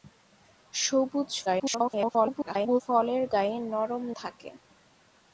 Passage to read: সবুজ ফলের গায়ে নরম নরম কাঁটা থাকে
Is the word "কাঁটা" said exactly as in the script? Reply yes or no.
no